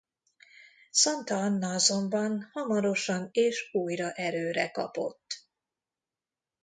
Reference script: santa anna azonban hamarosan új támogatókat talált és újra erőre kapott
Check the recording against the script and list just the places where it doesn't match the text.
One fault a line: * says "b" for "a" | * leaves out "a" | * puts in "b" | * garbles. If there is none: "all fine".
* leaves out "új támogatókat talált"